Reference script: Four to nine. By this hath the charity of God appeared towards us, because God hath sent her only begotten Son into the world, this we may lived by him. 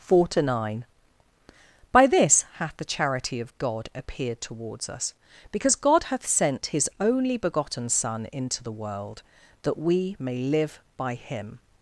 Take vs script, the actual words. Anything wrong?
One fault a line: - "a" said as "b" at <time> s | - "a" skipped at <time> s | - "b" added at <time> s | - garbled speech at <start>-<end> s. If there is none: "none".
- "her" said as "his" at 6.7 s
- "this" said as "that" at 9.6 s
- "lived" said as "live" at 10.4 s